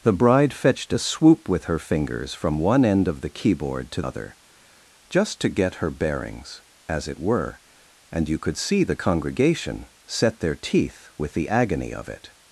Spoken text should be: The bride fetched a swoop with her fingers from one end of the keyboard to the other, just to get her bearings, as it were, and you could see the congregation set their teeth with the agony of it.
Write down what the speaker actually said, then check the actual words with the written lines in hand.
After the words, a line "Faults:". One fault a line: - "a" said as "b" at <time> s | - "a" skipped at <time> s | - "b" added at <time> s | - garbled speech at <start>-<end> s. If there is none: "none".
The bride fetched a swoop with her fingers from one end of the keyboard to other, just to get her bearings, as it were, and you could see the congregation set their teeth with the agony of it.
Faults:
- "the" skipped at 4.0 s